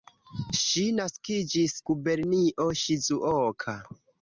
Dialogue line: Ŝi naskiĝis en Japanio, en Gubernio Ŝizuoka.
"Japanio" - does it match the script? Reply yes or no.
no